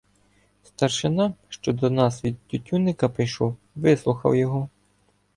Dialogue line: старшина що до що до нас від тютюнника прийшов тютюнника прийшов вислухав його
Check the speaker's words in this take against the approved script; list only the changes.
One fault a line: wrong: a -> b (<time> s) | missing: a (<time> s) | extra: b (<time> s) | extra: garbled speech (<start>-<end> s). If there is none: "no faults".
missing: що до (1.9 s)
missing: тютюнника прийшов (3.5 s)